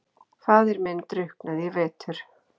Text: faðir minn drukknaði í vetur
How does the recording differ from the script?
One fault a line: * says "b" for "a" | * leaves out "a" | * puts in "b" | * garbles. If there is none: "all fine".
all fine